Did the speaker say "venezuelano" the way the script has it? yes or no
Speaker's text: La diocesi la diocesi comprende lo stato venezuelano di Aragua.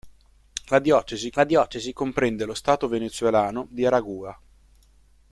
yes